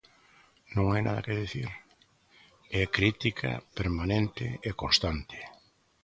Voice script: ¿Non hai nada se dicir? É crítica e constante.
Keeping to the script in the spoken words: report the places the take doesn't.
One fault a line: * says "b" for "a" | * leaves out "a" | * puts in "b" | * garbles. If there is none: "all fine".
* says "que" for "se"
* puts in "permanente"